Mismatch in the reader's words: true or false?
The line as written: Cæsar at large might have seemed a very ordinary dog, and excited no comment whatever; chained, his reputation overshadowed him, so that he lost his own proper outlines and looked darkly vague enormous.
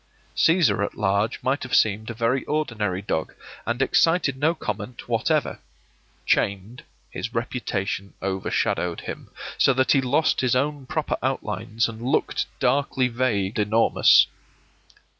false